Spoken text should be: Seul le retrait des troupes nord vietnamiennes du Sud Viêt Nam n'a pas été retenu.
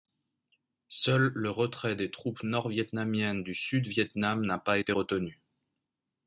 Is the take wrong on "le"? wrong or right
right